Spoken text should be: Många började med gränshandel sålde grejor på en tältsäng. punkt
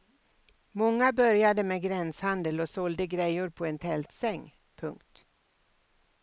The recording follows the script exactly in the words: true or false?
false